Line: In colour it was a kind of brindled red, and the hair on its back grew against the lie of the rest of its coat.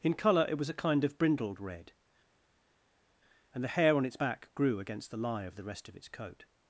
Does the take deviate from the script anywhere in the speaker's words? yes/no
no